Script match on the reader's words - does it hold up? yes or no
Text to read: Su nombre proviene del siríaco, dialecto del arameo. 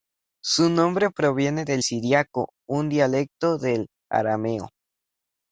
no